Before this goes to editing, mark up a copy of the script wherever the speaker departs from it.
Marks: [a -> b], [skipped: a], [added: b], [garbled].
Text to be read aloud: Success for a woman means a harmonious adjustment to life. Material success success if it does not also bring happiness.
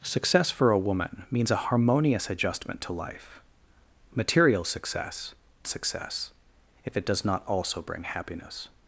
Success for a woman means a harmonious adjustment to life. Material success success if it does not also bring happiness.